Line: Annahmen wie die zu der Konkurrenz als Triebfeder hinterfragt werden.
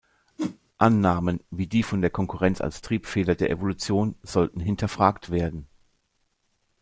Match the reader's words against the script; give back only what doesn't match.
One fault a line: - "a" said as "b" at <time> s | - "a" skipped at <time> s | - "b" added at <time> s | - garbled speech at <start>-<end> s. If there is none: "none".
- "zu" said as "von" at 1.8 s
- "der Evolution sollten" added at 3.3 s